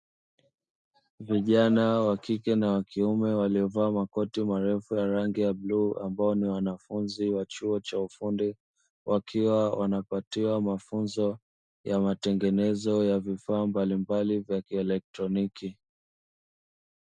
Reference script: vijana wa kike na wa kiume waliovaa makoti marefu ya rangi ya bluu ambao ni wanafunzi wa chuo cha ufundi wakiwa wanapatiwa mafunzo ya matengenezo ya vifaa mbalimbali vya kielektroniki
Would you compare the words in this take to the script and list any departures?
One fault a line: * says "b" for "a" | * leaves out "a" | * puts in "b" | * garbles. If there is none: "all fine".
all fine